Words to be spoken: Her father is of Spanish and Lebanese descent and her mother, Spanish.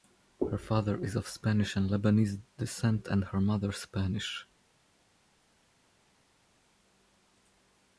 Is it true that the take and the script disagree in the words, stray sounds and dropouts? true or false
false